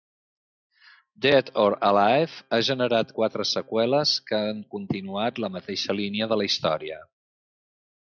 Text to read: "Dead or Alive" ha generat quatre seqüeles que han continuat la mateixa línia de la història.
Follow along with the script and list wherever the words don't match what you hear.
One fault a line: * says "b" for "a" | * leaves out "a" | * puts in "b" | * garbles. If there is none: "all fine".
all fine